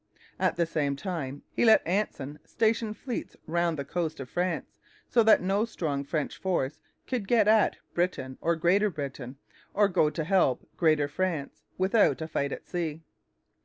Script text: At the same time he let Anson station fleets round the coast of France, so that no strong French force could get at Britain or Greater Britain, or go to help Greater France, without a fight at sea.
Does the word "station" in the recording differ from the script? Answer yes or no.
no